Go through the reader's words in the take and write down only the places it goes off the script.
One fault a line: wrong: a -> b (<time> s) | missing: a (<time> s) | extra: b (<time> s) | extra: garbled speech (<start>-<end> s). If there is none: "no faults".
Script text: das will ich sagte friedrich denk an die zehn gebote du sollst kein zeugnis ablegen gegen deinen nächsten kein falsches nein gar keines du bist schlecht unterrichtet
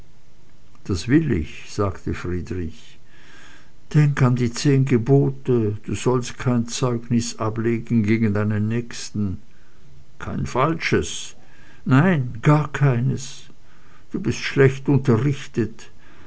no faults